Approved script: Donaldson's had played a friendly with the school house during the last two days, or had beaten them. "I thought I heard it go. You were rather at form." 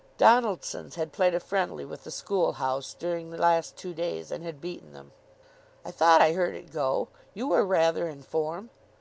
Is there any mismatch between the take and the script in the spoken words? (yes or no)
yes